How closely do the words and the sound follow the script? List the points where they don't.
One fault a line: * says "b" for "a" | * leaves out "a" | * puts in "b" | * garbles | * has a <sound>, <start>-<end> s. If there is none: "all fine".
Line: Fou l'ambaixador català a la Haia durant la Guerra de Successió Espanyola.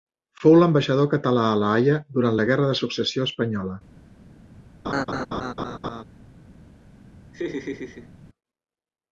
* has a laugh, 4.8-6.0 s
* has a laugh, 7.3-8.1 s